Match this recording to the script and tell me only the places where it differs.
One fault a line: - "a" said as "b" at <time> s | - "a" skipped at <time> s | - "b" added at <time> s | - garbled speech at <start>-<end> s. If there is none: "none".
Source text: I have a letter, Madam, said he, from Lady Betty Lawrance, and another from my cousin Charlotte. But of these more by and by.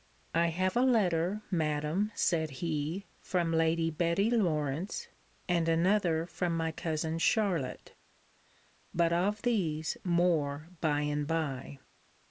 none